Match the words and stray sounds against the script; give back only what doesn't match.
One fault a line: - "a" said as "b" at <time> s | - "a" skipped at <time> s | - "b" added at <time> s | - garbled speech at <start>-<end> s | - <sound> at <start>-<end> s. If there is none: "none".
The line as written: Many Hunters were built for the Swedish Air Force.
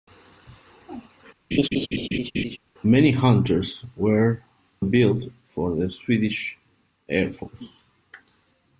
- laugh at 1.5-2.6 s